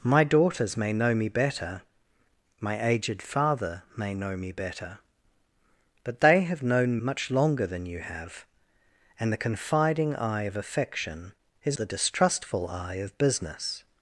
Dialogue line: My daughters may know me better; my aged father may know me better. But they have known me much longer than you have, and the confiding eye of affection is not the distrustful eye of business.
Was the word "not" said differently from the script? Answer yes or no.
yes